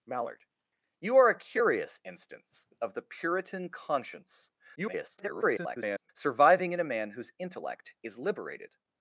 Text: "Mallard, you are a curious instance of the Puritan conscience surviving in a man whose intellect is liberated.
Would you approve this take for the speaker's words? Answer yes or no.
no